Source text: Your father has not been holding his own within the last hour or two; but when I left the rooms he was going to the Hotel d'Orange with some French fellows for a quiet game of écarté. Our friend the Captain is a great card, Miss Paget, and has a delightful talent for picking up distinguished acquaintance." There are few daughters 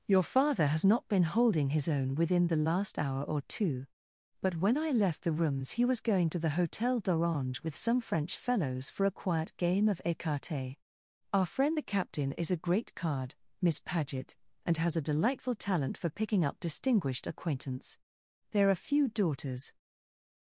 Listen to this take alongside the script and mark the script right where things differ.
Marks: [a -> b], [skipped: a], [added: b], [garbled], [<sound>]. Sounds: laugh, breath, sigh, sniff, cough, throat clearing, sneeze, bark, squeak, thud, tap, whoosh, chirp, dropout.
Your father has not been holding his own within the last hour or two; but when I left the rooms he was going to the Hotel d'Orange with some French fellows for a quiet game of écarté. Our friend the Captain is a great card, Miss Paget, and has a delightful talent for picking up distinguished acquaintance." There are few daughters